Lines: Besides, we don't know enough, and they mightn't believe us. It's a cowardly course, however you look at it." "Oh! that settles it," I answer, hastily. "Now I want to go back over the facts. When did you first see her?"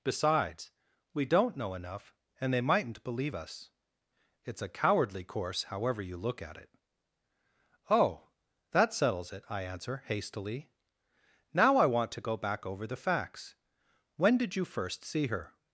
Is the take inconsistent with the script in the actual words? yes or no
no